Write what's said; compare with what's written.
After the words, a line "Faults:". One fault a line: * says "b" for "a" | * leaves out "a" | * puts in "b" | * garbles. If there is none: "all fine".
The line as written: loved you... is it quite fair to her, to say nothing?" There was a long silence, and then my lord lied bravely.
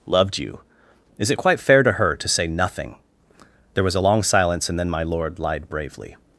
loved you... is it quite fair to her, to say nothing?" There was a long silence, and then my lord lied bravely.
Faults:
all fine